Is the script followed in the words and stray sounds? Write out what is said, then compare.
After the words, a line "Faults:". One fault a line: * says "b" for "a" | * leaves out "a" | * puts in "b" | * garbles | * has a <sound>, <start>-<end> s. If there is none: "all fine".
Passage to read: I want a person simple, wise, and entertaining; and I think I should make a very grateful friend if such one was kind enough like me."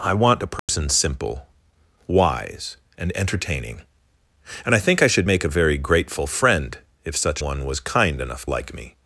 I want a person simple, wise, and entertaining; and I think I should make a very grateful friend if such one was kind enough like me."
Faults:
* has a dropout, 0.6-0.7 s